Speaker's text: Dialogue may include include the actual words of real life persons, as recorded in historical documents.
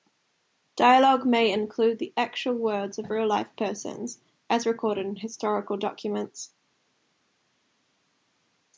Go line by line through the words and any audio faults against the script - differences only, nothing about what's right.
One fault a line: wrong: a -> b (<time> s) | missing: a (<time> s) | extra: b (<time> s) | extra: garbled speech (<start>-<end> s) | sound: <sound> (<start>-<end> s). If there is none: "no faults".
missing: include (2.0 s)